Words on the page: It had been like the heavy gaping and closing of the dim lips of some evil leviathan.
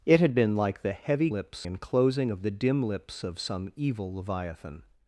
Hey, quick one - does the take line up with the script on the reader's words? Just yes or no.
no